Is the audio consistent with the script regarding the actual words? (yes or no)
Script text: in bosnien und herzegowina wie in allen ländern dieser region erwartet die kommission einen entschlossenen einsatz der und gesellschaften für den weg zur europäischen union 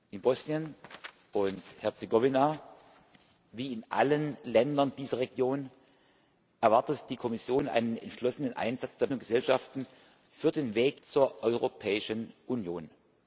yes